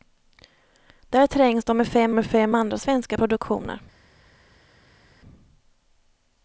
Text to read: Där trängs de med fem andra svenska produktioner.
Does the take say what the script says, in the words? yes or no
no